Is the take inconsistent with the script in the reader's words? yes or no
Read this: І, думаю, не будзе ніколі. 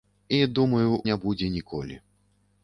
no